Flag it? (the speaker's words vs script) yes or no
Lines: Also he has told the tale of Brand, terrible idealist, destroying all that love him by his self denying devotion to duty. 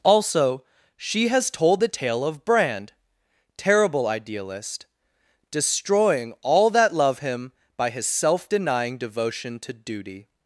yes